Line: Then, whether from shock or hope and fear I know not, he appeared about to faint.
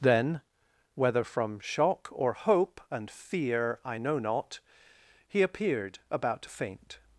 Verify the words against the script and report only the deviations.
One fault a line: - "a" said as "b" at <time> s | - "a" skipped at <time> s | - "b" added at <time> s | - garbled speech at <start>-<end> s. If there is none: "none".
none